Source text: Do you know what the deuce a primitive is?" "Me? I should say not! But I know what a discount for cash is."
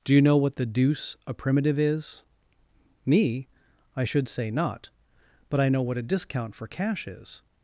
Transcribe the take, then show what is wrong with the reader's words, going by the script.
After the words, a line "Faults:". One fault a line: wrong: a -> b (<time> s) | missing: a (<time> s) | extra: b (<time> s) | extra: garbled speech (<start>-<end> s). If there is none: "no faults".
Do you know what the deuce a primitive is?" "Me? I should say not! But I know what a discount for cash is."
Faults:
no faults